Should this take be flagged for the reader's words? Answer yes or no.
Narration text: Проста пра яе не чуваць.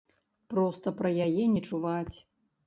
no